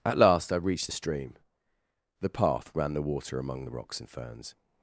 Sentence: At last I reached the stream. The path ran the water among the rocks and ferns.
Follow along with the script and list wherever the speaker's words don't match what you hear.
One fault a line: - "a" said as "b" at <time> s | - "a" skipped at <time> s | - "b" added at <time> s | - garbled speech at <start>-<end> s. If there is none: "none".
none